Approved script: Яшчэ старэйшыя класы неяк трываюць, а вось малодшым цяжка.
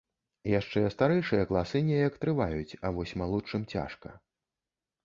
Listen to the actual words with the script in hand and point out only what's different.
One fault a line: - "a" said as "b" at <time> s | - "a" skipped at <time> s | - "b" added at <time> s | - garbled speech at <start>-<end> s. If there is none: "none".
none